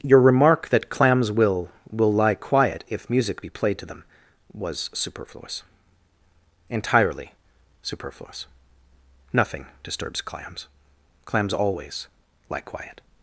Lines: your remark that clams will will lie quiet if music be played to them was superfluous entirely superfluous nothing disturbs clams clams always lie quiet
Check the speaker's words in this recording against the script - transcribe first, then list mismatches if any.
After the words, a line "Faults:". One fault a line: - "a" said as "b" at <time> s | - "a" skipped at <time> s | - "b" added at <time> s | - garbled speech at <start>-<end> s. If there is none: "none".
your remark that clams will will lie quiet if music be played to them was superfluous entirely superfluous nothing disturbs clams clams always lie quiet
Faults:
none